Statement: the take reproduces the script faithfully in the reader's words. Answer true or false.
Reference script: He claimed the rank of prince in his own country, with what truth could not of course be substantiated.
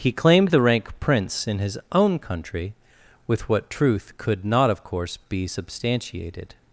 false